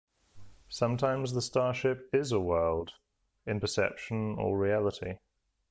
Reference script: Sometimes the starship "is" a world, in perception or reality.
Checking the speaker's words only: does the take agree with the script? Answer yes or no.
yes